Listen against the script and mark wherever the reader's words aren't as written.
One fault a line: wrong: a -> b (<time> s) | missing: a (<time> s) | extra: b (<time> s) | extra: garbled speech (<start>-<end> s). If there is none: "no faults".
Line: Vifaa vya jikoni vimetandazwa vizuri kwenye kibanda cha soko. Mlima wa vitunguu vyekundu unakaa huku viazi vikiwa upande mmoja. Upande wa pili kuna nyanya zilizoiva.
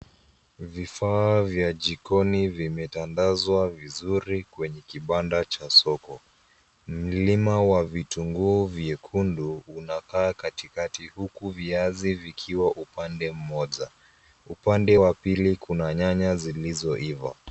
extra: katikati (10.3 s)